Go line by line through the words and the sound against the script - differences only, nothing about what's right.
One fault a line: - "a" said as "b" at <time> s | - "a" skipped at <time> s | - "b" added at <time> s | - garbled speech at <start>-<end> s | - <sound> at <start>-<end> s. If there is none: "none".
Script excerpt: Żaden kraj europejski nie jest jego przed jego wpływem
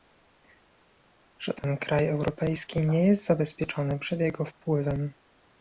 - "jego" said as "zabezpieczony" at 3.3 s